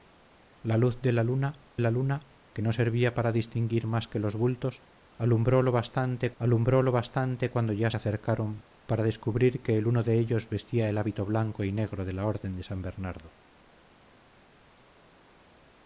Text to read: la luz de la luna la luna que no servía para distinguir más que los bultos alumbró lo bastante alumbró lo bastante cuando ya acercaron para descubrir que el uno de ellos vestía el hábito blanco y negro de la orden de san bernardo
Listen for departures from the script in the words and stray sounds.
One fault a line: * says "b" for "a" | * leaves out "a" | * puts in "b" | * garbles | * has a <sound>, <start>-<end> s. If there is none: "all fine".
all fine